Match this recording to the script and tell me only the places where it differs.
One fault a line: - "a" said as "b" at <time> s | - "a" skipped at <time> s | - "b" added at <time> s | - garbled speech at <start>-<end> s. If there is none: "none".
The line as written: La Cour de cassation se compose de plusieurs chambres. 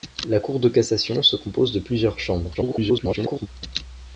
- garbled speech at 2.5-3.5 s